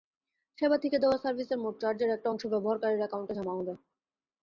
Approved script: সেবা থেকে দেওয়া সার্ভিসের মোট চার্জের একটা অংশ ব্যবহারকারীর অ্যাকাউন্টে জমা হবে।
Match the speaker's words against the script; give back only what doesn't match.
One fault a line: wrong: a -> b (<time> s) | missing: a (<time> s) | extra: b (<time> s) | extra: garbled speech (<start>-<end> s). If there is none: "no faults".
no faults